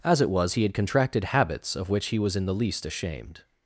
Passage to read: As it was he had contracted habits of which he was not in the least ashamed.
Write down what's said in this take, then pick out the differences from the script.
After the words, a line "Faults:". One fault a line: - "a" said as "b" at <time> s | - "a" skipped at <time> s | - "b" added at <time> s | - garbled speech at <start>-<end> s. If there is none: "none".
As it was he had contracted habits of which he was in the least ashamed.
Faults:
- "not" skipped at 2.4 s